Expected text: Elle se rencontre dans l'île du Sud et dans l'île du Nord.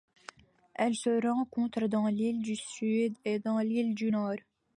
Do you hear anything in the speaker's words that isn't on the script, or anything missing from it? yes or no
no